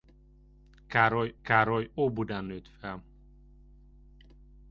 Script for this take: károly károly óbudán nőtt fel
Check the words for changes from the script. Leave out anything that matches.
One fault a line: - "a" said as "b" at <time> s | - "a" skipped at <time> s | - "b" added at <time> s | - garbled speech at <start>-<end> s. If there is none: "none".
none